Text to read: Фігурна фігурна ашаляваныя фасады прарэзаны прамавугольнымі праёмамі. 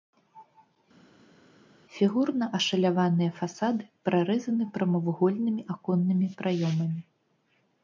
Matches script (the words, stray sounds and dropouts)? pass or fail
fail